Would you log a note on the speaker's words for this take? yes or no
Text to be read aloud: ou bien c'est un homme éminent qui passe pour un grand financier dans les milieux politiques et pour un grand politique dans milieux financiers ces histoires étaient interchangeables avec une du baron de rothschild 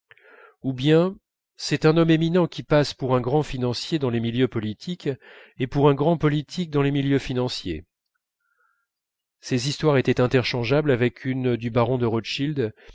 yes